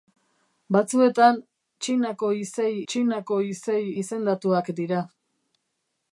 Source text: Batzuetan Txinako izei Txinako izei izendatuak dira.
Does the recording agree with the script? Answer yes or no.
yes